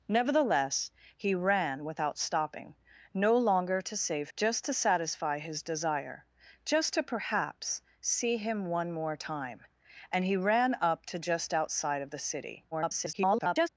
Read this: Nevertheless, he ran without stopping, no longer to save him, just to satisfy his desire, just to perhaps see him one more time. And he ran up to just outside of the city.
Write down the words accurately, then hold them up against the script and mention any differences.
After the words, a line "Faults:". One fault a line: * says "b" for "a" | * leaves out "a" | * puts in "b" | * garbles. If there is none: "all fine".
Nevertheless, he ran without stopping, no longer to save just to satisfy his desire, just to perhaps see him one more time. And he ran up to just outside of the city. [garbled]
Faults:
* leaves out "him"
* garbles